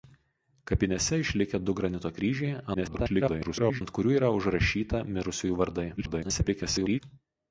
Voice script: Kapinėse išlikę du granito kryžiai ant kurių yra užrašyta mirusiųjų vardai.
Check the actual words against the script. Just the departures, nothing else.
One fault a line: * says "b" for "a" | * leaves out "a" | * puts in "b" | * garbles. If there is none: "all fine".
* garbles
* garbles